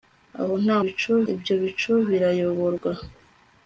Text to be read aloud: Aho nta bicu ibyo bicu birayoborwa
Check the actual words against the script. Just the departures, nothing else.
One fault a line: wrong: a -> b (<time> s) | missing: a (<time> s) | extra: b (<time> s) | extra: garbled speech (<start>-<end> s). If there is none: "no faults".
no faults